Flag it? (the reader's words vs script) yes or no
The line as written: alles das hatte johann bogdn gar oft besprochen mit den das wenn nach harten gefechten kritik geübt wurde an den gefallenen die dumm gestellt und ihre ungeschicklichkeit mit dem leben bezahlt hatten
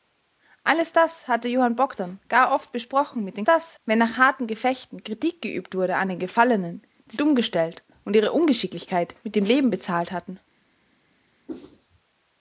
no